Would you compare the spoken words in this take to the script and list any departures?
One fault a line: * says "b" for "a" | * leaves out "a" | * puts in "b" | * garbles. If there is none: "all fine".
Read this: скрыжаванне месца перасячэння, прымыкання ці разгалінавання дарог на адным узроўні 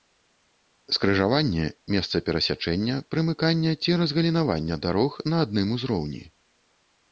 all fine